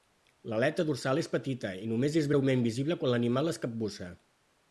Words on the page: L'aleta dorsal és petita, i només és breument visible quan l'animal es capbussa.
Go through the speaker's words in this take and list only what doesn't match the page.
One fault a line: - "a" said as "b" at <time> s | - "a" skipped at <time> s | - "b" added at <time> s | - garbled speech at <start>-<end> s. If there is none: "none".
none